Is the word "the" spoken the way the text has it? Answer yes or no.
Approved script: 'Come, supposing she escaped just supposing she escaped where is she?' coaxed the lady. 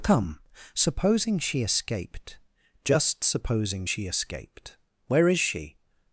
no